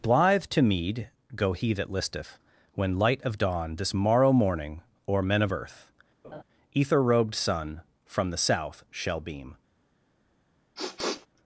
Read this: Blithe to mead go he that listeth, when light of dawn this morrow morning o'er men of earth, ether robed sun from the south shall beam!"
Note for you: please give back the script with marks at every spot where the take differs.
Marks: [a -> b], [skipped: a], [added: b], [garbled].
Blithe to mead go he that listeth, when light of dawn this morrow morning o'er men of earth, ether robed sun from the south shall beam!"